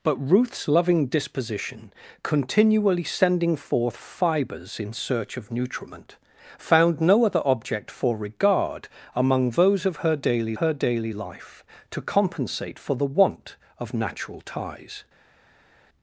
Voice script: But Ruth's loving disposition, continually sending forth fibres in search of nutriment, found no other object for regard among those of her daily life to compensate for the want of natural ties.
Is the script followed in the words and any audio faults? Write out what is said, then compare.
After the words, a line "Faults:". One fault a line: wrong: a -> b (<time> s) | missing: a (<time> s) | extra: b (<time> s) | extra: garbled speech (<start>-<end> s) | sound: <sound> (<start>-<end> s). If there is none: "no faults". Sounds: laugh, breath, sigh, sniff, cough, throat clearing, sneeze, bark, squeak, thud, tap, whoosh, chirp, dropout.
But Ruth's loving disposition, continually sending forth fibres in search of nutriment, found no other object for regard among those of her daily her daily life to compensate for the want of natural ties.
Faults:
extra: her daily (10.6 s)